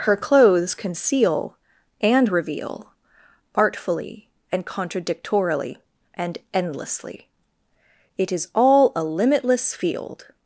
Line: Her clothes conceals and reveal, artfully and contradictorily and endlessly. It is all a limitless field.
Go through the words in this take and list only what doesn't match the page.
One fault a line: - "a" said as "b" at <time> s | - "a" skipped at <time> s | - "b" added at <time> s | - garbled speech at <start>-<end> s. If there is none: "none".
- "conceals" said as "conceal" at 0.7 s